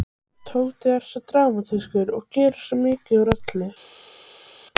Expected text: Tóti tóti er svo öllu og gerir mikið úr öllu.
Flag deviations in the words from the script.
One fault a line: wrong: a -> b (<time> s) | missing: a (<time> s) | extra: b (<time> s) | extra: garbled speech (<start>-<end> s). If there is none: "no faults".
missing: tóti (0.9 s)
wrong: öllu -> dramatískur (1.3 s)
extra: svo (2.6 s)